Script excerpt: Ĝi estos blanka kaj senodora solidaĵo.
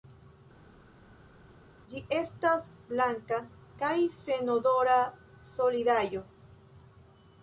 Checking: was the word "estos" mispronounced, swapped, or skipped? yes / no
yes